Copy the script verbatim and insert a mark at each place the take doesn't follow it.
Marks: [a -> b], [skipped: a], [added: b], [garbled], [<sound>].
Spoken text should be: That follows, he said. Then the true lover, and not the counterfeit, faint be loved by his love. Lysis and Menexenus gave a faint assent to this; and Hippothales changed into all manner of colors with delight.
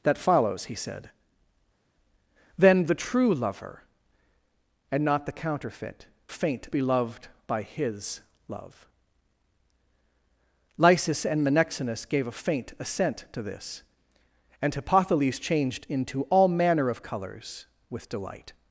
That follows, he said. Then the true lover, and not the counterfeit, faint be loved by his love. Lysis and Menexenus gave a faint assent to this; and Hippothales changed into all manner of colors with delight.